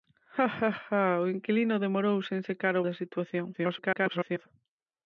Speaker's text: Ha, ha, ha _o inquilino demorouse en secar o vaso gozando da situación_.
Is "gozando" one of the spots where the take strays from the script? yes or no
yes